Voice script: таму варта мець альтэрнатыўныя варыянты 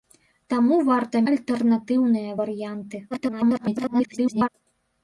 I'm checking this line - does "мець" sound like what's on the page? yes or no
no